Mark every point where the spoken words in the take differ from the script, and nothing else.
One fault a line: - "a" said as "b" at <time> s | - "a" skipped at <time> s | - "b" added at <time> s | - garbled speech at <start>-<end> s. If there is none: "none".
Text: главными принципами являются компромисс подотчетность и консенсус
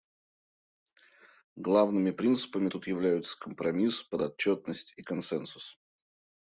- "тут" added at 2.7 s